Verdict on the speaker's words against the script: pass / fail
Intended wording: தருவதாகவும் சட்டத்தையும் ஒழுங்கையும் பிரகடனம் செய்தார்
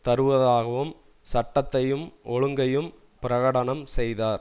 pass